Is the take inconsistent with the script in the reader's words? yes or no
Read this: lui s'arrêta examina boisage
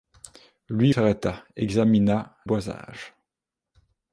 no